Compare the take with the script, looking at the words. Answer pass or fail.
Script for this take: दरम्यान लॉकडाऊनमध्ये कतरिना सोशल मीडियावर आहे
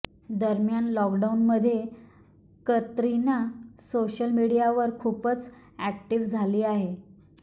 fail